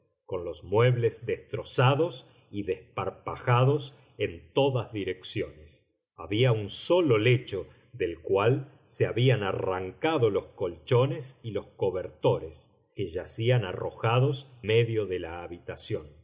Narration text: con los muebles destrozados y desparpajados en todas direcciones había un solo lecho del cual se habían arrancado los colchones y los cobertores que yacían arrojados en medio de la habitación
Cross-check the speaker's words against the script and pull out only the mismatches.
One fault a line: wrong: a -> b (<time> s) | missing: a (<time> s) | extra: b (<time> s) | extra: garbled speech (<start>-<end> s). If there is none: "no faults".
missing: en (14.5 s)